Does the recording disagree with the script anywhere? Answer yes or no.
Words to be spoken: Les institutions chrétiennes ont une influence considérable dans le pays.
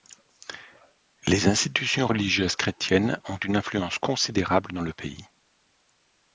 yes